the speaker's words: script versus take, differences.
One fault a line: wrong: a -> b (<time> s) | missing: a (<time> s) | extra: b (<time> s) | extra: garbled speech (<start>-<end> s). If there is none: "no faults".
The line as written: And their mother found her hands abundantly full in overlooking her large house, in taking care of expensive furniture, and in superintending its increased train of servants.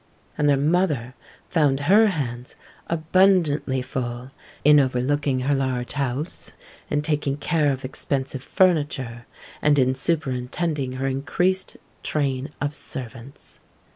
wrong: its -> her (10.9 s)